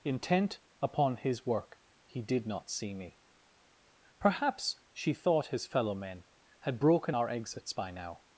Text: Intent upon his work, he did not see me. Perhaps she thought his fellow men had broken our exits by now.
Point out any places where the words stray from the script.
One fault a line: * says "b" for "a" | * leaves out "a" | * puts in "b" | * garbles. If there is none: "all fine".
all fine